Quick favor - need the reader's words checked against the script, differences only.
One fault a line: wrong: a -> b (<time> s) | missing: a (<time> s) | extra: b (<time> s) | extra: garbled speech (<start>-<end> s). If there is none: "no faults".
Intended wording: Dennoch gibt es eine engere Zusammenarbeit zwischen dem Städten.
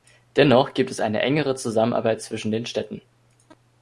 wrong: dem -> den (2.5 s)